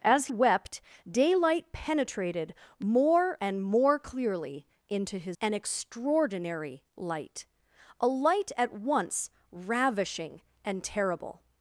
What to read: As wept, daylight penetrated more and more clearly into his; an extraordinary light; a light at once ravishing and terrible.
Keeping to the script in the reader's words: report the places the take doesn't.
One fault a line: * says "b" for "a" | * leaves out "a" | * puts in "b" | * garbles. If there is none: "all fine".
all fine